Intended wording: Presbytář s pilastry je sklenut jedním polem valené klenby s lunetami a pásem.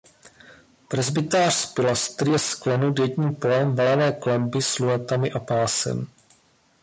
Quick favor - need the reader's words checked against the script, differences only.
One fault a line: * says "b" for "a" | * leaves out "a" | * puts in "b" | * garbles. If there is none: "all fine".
all fine